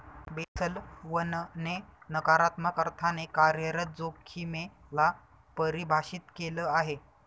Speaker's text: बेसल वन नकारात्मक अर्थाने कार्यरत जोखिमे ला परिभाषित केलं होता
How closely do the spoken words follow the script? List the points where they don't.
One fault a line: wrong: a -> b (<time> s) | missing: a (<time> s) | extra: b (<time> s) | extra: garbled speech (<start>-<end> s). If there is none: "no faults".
extra: ने (1.6 s)
wrong: होता -> आहे (6.7 s)